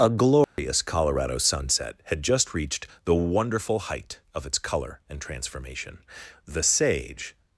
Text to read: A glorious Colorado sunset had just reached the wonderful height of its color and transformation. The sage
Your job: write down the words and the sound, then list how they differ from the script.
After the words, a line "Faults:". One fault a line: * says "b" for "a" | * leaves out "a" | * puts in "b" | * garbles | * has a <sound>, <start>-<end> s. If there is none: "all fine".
A glorious Colorado sunset had just reached the wonderful height of its color and transformation. The sage
Faults:
* has a dropout, 0.4-0.6 s